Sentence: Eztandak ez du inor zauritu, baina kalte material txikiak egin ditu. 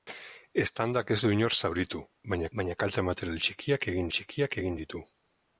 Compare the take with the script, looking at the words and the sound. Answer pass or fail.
fail